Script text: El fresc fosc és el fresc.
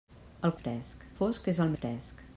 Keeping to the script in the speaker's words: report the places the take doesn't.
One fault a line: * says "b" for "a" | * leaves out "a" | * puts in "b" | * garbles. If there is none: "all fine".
all fine